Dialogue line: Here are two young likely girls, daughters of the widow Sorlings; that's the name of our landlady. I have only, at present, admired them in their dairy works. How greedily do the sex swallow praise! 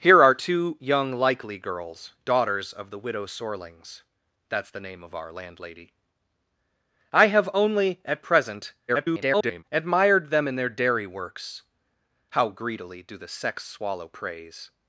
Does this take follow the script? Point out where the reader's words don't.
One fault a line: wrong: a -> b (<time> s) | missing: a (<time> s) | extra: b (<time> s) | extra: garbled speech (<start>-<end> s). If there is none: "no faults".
extra: garbled speech (8.9-9.6 s)